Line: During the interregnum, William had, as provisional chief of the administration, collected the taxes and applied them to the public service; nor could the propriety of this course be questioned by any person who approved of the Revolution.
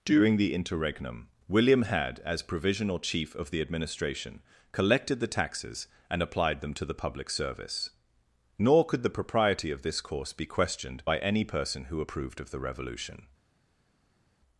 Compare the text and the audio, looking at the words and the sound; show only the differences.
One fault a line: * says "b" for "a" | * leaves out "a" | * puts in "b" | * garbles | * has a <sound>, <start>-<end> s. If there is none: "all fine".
all fine